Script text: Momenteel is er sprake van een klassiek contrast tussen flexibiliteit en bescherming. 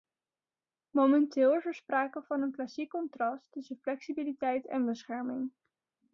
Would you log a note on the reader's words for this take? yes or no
no